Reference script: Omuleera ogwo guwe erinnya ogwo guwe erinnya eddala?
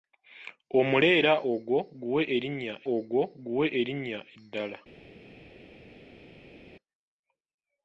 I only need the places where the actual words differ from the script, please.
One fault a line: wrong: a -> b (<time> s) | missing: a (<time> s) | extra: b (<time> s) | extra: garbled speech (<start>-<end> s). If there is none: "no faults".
no faults